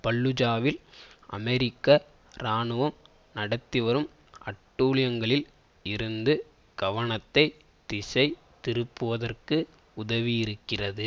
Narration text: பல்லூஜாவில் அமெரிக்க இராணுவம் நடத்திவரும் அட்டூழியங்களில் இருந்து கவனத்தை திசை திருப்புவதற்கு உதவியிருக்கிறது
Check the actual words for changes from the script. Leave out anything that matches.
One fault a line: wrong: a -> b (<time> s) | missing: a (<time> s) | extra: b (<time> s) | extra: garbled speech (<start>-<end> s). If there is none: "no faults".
no faults